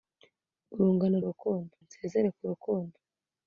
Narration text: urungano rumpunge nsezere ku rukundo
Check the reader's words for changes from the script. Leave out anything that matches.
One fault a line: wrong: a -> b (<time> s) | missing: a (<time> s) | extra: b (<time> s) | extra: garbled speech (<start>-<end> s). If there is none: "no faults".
wrong: rumpunge -> rukundo (1.3 s)